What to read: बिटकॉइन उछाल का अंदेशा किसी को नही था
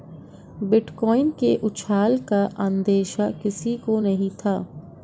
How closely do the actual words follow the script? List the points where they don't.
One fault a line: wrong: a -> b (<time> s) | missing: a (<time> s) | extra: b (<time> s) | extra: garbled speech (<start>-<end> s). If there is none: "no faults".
extra: के (1.4 s)